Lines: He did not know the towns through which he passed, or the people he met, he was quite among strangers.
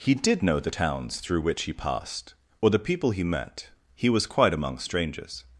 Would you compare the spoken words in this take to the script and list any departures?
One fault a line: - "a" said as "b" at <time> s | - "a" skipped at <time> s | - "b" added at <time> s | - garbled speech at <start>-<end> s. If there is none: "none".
- "not" skipped at 0.5 s